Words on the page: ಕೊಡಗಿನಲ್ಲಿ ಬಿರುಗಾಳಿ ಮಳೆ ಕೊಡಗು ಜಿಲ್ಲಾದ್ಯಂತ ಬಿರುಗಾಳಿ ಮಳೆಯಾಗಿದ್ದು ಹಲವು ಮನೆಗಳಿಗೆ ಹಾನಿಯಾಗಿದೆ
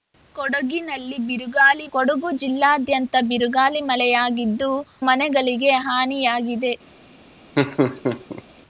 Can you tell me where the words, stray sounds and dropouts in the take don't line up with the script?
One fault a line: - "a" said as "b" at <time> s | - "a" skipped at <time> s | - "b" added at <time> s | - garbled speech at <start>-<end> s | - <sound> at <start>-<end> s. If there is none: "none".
- "ಮಳೆ" skipped at 1.9 s
- "ಹಲವು" skipped at 4.7 s
- laugh at 7.6-8.4 s